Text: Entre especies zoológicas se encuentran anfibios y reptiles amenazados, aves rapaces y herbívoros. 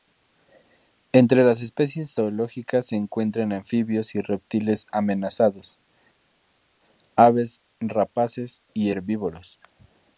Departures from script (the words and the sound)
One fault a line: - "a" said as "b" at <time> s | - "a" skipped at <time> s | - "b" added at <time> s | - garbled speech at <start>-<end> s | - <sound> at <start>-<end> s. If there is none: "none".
- "las" added at 1.4 s